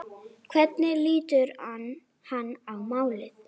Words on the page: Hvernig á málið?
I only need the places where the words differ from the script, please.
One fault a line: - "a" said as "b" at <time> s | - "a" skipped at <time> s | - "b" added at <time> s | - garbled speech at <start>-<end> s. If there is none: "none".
- "lítur hann" added at 1.1 s